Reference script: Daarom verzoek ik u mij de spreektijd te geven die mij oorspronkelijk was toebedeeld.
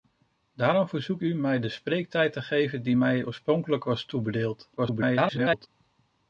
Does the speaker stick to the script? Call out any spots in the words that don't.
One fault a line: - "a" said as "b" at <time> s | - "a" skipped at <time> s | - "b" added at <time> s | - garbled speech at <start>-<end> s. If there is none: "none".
- "ik" skipped at 1.2 s
- garbled speech at 4.8-5.7 s